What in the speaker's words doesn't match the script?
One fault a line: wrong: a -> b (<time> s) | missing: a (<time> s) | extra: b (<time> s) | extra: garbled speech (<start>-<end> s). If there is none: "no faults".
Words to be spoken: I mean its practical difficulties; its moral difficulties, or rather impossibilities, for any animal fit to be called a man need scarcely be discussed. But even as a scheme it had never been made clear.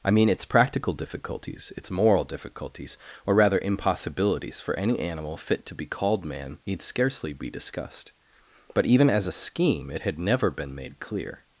missing: a (6.2 s)